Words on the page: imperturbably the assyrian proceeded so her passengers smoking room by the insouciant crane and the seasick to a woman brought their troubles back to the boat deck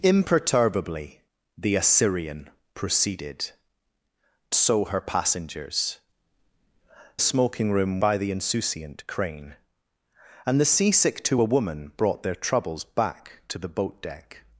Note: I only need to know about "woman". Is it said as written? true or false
true